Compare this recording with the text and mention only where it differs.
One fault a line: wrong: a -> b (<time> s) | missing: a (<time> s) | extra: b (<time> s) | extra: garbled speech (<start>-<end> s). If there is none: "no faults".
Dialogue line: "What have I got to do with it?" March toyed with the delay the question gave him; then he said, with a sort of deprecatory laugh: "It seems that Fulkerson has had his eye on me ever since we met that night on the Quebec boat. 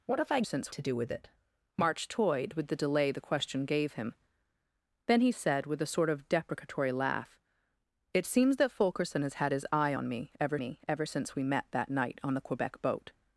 wrong: got -> since (0.4 s)
extra: me ever (10.6 s)